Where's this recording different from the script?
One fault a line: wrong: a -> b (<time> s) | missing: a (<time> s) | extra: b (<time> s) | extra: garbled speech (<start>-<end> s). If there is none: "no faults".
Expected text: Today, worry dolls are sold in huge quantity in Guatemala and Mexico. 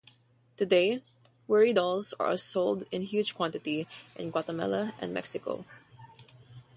no faults